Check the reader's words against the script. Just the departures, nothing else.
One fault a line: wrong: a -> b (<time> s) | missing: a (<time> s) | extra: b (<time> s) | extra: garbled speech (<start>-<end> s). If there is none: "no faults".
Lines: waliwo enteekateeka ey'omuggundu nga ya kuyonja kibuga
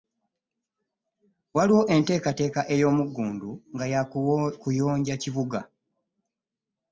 no faults